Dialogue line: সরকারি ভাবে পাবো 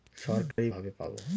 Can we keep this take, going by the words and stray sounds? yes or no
no